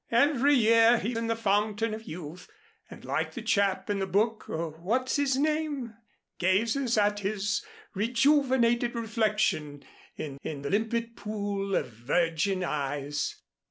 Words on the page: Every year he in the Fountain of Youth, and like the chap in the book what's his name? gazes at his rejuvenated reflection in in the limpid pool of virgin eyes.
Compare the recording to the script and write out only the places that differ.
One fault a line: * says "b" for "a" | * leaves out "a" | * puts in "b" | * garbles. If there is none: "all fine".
all fine